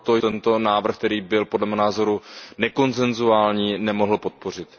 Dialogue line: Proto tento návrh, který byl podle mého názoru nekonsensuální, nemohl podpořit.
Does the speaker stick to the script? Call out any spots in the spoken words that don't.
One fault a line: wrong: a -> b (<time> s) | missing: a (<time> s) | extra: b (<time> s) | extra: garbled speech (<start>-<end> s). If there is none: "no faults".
no faults